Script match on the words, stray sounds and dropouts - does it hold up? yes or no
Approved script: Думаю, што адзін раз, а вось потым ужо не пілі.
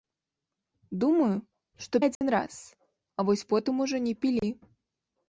no